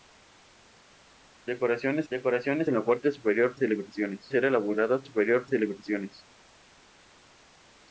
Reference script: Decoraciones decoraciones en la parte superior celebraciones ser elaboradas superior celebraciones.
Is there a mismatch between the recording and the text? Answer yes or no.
no